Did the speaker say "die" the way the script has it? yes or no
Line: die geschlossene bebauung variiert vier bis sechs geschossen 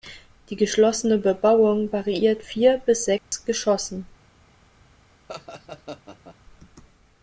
yes